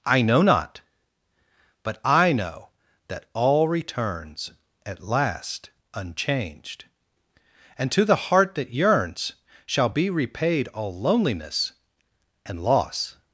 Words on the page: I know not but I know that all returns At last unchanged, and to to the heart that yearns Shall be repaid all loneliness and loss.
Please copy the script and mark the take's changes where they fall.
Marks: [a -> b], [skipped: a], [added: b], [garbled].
I know not but I know that all returns At last unchanged, and to [skipped: to] the heart that yearns Shall be repaid all loneliness and loss.